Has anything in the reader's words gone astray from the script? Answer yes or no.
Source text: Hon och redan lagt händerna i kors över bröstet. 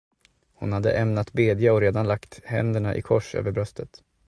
yes